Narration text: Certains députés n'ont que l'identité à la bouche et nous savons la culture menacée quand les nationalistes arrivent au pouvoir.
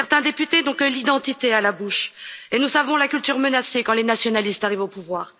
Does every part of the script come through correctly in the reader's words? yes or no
yes